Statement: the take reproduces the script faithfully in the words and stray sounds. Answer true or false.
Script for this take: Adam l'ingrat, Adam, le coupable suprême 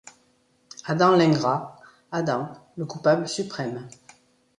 true